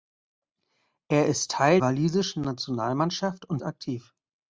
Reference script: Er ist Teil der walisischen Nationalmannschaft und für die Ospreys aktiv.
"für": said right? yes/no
no